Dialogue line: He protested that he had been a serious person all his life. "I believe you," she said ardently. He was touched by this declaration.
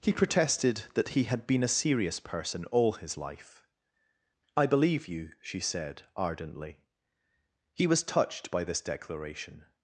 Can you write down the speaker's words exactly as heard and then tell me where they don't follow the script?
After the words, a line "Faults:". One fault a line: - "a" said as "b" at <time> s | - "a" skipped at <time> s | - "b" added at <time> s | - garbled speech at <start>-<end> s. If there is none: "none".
He protested that he had been a serious person all his life. "I believe you," she said ardently. He was touched by this declaration.
Faults:
none